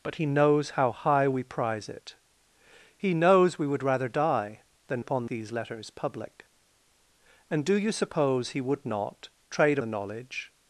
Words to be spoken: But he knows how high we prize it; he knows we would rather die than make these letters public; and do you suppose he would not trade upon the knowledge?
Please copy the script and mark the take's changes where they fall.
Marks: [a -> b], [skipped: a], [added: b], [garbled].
But he knows how high we prize it; he knows we would rather die than [make -> upon] these letters public; and do you suppose he would not trade [skipped: upon] the knowledge?